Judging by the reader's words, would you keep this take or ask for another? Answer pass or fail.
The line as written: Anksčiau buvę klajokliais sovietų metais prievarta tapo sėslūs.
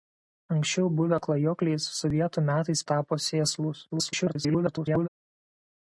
fail